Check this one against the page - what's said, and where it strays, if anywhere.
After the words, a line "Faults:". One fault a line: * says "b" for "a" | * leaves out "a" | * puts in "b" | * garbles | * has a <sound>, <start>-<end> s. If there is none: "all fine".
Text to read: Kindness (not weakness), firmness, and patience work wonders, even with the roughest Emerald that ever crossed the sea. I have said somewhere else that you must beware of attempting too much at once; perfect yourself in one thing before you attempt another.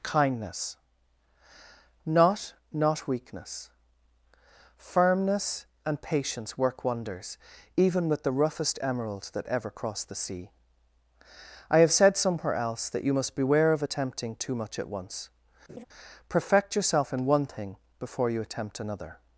Kindness (not not weakness), firmness, and patience work wonders, even with the roughest Emerald that ever crossed the sea. I have said somewhere else that you must beware of attempting too much at once; perfect yourself in one thing before you attempt another.
Faults:
* puts in "not"
* has a laugh, 15.7-15.8 s